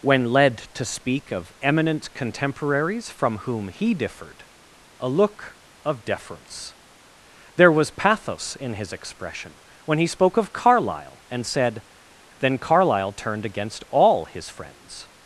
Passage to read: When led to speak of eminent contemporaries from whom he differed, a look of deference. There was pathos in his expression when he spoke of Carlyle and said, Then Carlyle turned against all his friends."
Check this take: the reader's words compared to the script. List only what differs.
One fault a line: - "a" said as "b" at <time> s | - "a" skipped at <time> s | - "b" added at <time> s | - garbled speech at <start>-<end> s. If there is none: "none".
none